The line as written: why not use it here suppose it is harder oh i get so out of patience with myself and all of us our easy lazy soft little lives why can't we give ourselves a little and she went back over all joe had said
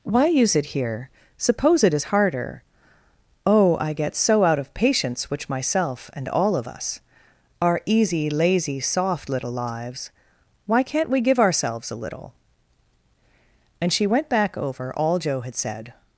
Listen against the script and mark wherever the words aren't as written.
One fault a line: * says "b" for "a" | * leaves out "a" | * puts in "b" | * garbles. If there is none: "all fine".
* leaves out "not"
* says "which" for "with"